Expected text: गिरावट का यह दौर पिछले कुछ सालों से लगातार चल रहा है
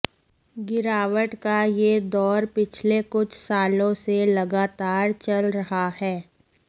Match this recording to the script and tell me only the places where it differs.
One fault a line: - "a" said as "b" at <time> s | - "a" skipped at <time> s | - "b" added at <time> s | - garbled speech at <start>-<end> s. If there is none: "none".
none